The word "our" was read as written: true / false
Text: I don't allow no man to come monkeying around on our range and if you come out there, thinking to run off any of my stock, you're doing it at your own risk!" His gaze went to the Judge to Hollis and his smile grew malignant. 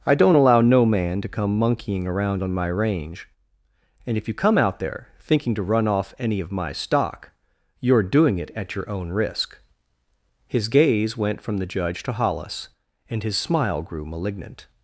false